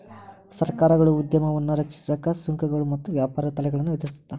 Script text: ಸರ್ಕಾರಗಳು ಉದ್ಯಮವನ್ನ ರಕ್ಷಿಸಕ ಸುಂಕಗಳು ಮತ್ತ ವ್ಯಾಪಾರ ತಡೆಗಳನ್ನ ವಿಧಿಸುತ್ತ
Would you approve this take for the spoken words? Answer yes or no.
yes